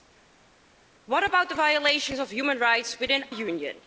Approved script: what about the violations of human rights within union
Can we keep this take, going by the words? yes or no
yes